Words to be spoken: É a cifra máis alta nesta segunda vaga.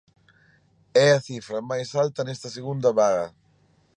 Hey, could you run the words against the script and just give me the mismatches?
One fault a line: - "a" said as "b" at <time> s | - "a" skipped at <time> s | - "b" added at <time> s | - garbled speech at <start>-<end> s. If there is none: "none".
none